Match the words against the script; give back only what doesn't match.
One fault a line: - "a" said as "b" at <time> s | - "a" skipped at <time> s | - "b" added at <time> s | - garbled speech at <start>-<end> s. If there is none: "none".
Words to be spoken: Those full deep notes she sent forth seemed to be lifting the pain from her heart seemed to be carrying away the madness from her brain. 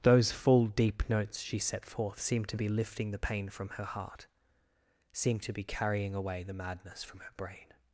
- "sent" said as "set" at 1.6 s